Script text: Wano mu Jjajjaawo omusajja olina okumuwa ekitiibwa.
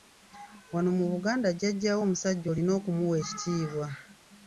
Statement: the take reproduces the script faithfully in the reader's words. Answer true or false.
false